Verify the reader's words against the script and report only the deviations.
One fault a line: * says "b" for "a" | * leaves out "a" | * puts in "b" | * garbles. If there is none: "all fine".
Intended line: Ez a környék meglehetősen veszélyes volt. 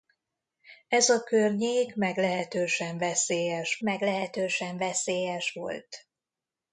* puts in "meglehetősen veszélyes"